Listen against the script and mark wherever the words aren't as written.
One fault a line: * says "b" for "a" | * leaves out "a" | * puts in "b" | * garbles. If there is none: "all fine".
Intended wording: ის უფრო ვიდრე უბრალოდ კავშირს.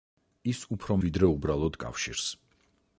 all fine